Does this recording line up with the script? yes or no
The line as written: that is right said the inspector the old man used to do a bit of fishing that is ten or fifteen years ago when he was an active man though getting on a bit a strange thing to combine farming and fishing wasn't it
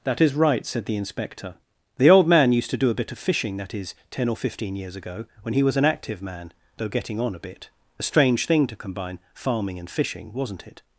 yes